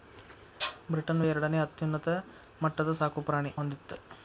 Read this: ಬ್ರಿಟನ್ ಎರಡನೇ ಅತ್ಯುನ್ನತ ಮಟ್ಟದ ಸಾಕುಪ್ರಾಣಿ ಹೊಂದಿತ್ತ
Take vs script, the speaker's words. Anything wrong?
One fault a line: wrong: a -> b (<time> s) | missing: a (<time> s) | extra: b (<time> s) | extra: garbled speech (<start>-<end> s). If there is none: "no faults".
no faults